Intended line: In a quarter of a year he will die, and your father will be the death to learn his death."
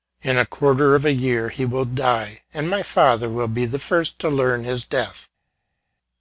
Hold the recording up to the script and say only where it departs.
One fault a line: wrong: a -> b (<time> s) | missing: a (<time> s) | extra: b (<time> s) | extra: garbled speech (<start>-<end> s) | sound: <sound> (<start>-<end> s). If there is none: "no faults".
wrong: your -> my (2.7 s)
wrong: death -> first (3.8 s)